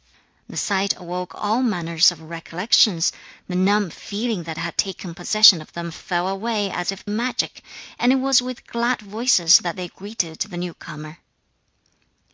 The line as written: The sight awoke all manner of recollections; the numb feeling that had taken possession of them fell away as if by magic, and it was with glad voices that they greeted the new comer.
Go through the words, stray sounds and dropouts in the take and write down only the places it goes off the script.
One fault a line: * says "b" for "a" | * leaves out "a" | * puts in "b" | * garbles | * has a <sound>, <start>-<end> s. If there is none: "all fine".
* leaves out "by"